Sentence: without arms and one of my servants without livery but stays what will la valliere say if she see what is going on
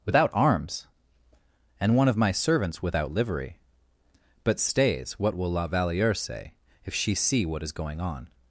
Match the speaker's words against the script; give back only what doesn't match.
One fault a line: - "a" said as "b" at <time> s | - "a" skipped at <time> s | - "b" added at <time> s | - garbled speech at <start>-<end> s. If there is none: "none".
none